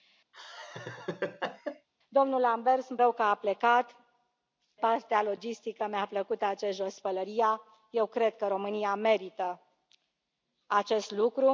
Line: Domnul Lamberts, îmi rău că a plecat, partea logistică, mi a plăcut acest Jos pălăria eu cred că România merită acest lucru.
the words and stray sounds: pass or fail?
fail